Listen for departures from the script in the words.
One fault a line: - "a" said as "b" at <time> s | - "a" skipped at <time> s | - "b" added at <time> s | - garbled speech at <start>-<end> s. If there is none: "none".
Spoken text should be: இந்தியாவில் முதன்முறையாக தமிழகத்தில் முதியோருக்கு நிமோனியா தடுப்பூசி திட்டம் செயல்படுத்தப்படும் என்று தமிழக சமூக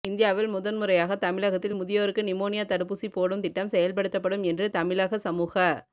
- "போடும்" added at 3.1 s